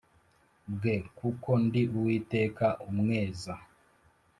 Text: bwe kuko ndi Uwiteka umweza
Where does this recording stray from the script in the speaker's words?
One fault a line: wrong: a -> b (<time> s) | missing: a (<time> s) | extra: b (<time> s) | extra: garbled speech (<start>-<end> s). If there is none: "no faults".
no faults